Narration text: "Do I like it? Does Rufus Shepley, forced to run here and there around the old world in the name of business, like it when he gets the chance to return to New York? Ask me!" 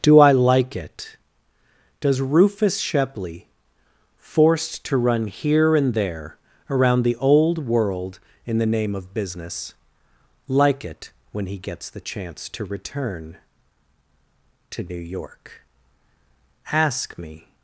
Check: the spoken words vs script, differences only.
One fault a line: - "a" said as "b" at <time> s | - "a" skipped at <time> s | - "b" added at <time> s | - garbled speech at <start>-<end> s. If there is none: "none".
none